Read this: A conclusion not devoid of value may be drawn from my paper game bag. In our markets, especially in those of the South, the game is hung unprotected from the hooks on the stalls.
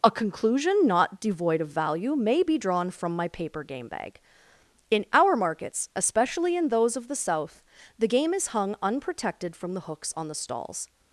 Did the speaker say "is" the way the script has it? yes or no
yes